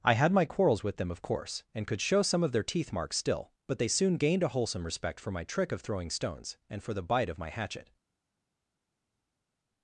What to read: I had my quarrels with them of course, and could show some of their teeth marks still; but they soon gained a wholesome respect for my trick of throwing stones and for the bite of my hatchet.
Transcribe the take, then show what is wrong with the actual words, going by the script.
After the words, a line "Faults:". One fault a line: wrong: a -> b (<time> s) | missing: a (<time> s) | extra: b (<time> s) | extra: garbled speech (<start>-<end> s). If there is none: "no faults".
I had my quarrels with them of course, and could show some of their teeth marks still; but they soon gained a wholesome respect for my trick of throwing stones and for the bite of my hatchet.
Faults:
no faults